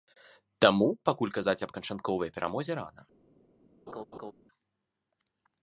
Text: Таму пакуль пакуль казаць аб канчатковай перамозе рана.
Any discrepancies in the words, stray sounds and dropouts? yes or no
yes